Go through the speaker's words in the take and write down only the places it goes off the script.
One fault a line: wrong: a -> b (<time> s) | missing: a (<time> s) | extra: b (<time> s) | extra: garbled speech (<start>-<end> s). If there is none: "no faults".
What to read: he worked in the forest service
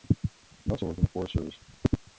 extra: also (0.7 s)